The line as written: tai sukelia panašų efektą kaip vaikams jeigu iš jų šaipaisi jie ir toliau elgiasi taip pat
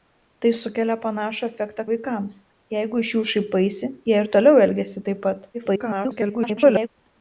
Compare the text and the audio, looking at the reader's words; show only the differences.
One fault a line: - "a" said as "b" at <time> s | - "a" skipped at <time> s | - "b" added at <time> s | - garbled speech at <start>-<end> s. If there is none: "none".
- "kaip" skipped at 1.8 s
- garbled speech at 5.5-6.9 s